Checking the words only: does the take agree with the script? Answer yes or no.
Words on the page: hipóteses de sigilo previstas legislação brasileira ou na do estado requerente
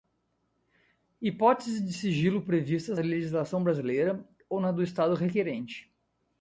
yes